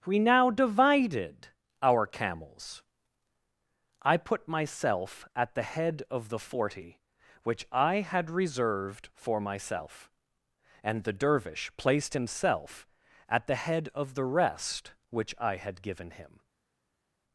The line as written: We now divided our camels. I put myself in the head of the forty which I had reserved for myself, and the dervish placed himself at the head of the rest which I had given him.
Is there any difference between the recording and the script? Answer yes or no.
yes